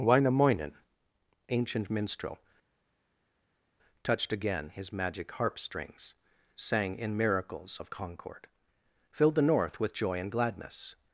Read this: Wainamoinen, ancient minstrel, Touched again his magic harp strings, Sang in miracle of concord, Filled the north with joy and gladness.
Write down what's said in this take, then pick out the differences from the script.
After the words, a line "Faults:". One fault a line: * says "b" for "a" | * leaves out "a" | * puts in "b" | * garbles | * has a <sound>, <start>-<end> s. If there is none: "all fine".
Wainamoinen, ancient minstrel, Touched again his magic harp strings, Sang in miracles of concord, Filled the north with joy and gladness.
Faults:
* says "miracles" for "miracle"